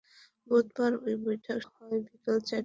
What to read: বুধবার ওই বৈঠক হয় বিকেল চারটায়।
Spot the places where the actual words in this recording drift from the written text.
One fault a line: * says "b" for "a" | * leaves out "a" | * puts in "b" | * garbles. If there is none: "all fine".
all fine